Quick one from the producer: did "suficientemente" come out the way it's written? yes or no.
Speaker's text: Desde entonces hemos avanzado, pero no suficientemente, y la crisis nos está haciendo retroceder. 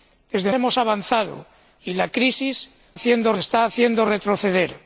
no